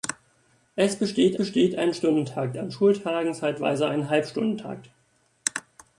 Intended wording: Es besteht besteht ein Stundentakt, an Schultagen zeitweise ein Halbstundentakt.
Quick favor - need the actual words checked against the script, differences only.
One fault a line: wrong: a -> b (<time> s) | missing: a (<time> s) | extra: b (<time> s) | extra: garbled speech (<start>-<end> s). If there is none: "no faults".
no faults